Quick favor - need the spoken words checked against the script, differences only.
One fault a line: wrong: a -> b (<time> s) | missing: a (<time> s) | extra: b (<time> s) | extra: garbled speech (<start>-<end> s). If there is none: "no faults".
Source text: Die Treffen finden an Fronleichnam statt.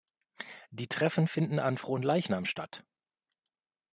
no faults